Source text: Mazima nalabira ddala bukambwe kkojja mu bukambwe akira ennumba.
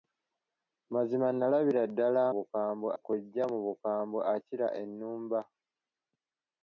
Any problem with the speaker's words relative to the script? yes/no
no